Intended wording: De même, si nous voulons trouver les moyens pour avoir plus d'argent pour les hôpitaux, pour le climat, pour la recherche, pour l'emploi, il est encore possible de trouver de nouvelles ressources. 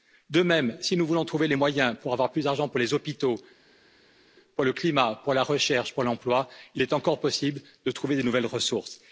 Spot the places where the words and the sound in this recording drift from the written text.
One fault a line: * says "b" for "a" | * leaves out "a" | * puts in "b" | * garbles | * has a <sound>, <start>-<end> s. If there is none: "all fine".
all fine